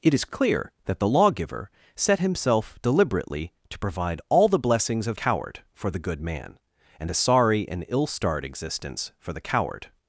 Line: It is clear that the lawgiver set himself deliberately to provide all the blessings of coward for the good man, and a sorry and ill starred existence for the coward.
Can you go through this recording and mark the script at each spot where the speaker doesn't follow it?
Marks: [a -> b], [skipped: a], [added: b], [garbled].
It is clear that the lawgiver set himself deliberately to provide all the blessings of coward for the good man, and a sorry and ill starred existence for the coward.